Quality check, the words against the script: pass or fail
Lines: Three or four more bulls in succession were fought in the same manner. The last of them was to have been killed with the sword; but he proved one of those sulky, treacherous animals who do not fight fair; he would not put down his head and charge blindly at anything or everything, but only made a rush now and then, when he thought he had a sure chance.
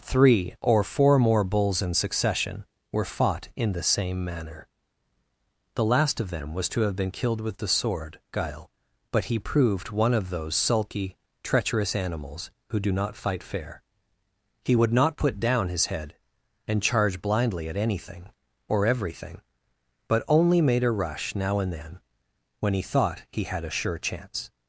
fail